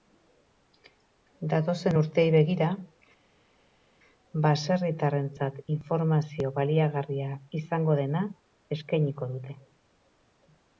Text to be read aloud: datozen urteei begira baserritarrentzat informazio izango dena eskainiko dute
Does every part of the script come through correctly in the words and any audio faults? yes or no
no